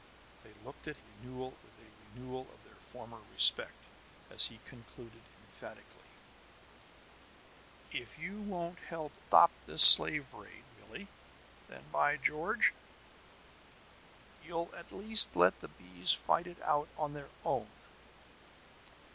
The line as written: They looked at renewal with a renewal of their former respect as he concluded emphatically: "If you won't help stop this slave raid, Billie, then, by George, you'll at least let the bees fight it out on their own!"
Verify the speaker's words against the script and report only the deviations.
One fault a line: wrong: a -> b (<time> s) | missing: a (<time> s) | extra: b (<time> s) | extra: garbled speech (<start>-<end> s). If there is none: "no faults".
no faults